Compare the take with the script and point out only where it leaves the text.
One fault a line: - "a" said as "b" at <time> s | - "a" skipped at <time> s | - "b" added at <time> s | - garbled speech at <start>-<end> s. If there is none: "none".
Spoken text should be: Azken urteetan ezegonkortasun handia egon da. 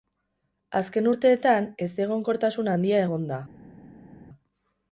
none